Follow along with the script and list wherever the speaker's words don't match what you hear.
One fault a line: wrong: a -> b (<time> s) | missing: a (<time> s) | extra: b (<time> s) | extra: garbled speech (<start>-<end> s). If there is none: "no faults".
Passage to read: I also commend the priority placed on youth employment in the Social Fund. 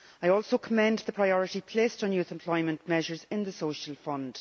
extra: measures (2.9 s)